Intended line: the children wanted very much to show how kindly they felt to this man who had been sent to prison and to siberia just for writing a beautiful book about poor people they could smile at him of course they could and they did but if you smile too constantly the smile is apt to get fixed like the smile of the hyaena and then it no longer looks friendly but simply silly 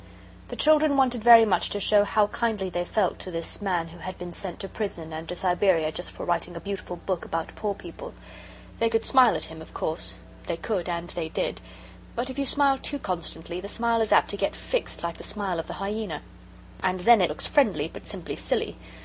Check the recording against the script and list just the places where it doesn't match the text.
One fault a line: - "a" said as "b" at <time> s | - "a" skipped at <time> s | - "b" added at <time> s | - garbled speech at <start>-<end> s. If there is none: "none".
- "no longer" skipped at 17.3 s